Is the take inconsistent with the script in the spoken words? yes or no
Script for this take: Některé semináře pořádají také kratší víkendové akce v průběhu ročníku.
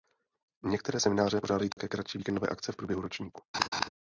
no